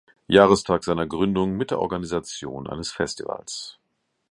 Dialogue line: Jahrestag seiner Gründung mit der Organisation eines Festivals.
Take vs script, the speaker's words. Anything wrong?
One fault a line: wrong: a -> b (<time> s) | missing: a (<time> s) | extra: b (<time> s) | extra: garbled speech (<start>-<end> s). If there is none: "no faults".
no faults